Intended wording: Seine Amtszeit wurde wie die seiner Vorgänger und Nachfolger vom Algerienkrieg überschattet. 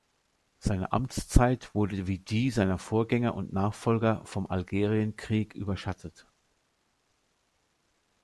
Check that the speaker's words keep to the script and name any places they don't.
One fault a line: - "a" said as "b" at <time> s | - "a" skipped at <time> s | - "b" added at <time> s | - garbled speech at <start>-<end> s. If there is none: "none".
none